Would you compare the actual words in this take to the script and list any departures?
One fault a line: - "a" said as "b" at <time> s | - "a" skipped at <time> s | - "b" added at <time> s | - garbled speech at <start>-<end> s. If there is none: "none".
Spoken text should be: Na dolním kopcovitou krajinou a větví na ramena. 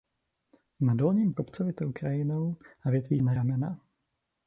none